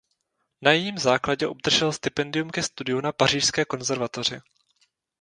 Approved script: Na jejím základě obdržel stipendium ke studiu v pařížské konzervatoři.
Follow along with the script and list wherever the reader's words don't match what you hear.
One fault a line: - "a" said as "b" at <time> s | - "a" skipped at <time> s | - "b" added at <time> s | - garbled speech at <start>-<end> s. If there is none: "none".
- "v" said as "na" at 3.0 s